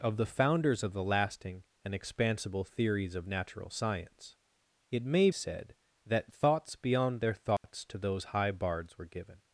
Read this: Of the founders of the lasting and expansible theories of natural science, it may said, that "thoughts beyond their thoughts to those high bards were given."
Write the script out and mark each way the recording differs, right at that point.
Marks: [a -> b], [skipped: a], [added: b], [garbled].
Of the founders of the lasting and expansible theories of natural science, it may said, that "thoughts beyond their thoughts to those high bards were given."